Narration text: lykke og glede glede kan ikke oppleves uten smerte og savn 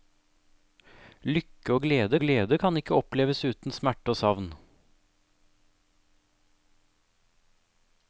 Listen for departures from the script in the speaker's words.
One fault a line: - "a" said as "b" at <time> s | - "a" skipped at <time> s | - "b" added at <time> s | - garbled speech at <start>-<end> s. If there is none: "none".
none